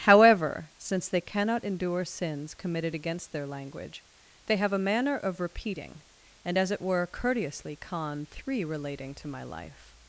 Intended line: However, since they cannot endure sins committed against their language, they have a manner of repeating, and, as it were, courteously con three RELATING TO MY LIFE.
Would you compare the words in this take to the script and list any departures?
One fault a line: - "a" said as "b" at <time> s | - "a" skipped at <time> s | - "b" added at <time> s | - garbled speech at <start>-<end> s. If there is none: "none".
none